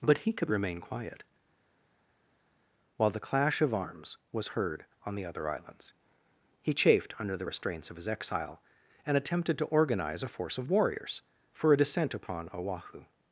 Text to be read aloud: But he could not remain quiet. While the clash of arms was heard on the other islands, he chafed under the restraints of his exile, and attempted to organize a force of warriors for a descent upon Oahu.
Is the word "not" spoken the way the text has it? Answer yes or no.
no